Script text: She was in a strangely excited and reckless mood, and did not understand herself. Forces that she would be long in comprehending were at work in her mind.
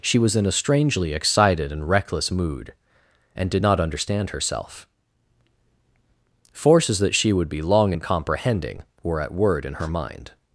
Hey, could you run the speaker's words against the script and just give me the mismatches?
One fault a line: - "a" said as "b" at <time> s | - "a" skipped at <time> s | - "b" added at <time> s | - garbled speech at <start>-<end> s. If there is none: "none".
- "work" said as "word" at 9.3 s